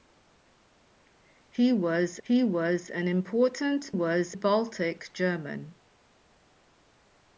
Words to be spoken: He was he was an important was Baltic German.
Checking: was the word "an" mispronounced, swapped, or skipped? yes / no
no